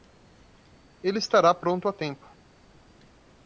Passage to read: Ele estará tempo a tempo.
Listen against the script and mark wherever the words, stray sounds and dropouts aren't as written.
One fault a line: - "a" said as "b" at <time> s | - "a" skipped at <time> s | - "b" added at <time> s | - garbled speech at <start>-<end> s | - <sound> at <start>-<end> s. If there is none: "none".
- "tempo" said as "pronto" at 1.5 s